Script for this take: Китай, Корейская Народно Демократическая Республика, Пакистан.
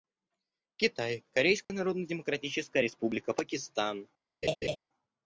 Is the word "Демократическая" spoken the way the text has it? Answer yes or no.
yes